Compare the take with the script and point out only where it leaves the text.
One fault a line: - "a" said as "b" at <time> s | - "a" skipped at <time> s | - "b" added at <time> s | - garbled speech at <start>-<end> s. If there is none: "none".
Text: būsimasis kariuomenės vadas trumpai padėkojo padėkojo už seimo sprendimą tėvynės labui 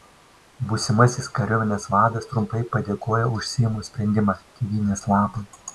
- "padėkojo" skipped at 3.3 s